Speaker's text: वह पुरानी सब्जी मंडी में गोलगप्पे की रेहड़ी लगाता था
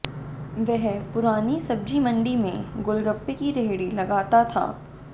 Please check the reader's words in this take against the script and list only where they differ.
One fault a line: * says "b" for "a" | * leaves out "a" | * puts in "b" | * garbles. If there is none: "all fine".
all fine